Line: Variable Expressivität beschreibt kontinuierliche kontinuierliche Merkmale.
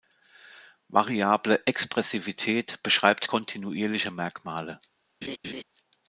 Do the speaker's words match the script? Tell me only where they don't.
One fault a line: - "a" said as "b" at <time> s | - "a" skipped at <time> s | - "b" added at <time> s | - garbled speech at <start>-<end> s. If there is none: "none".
- "kontinuierliche" skipped at 4.1 s